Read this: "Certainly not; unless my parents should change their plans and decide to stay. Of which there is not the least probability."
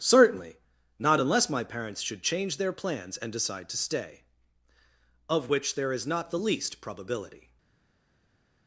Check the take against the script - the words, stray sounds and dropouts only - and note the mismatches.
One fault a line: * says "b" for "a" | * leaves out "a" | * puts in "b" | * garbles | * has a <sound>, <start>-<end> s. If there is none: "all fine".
all fine